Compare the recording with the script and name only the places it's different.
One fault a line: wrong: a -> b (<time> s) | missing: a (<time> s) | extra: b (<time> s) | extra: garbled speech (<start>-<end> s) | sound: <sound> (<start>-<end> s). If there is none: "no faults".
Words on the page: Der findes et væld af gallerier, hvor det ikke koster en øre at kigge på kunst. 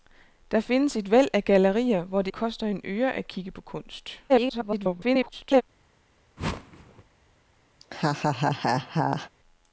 missing: ikke (2.3 s)
extra: garbled speech (4.3-5.6 s)
sound: whoosh (6.4-7.0 s)
sound: laugh (7.8-9.3 s)